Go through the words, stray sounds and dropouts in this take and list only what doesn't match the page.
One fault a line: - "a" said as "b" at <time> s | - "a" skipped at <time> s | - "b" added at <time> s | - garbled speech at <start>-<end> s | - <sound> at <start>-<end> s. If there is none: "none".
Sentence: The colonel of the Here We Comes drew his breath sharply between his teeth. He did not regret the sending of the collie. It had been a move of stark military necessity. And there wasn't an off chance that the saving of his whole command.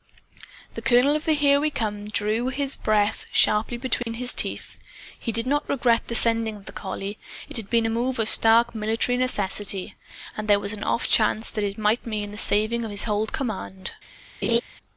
- dropout at 4.0-4.1 s
- "wasn't" said as "was" at 10.6 s
- "it might mean" added at 11.6 s
- laugh at 14.4-14.6 s